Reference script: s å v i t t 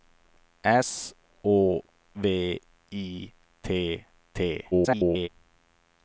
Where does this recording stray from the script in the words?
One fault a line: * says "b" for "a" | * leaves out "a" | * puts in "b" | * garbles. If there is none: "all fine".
* garbles